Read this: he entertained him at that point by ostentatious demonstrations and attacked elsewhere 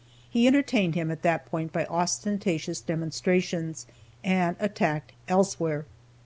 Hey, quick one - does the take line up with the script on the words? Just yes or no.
yes